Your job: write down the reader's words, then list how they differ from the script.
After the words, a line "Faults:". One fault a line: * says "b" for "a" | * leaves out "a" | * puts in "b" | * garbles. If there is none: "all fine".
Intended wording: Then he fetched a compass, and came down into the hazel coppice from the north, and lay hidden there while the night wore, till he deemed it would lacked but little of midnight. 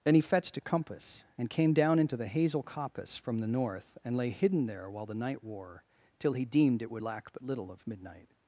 Then he fetched a compass, and came down into the hazel coppice from the north, and lay hidden there while the night wore, till he deemed it would lack but little of midnight.
Faults:
* says "lack" for "lacked"